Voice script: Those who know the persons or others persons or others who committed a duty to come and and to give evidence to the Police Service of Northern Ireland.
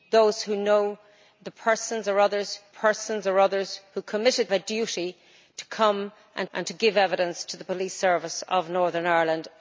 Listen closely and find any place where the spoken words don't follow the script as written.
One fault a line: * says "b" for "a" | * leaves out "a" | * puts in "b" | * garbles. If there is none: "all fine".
all fine